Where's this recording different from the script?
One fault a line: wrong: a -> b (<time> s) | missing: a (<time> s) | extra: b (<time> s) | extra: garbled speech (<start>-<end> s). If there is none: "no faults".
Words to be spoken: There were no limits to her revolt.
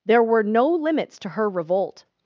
no faults